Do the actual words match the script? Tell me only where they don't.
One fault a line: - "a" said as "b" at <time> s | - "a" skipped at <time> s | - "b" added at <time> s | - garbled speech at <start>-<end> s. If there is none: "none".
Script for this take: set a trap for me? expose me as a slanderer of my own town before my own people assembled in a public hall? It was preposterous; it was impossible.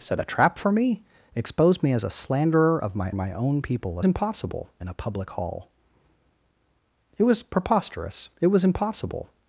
- "own town before" skipped at 3.1 s
- "assembled" said as "impossible" at 4.0 s